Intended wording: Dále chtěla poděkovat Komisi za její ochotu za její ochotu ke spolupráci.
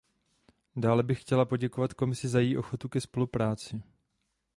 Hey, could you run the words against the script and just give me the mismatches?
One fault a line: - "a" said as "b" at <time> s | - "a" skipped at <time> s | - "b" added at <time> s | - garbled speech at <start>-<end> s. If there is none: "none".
- "bych" added at 1.0 s
- "za její ochotu" skipped at 2.9 s